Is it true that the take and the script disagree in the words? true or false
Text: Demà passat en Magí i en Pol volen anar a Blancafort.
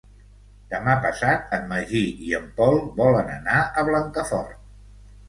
false